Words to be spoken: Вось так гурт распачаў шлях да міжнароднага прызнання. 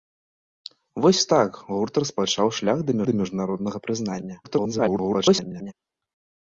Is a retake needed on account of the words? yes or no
yes